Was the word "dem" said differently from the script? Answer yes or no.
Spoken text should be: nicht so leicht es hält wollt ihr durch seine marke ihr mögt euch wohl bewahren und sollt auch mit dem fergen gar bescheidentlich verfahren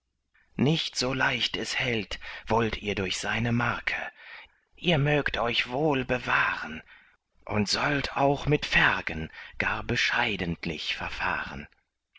yes